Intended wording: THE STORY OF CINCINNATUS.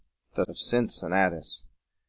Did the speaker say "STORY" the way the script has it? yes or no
no